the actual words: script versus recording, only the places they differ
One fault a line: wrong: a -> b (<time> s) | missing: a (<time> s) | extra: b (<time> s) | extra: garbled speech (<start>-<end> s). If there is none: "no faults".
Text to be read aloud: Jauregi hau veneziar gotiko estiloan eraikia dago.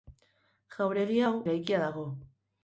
missing: veneziar gotiko estiloan (1.3 s)